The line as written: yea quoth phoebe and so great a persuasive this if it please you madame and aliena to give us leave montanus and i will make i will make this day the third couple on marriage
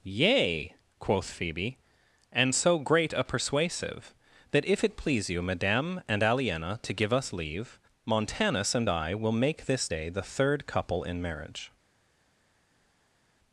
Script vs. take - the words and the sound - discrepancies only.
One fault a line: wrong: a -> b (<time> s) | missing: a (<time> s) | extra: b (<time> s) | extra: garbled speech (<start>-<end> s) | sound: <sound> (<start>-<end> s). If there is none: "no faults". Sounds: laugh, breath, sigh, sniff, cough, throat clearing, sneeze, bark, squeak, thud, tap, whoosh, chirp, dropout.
wrong: this -> that (4.5 s)
missing: i will make (9.7 s)
wrong: on -> in (11.0 s)